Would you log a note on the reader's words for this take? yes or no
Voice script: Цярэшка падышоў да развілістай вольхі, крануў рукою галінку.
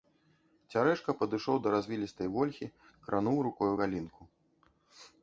no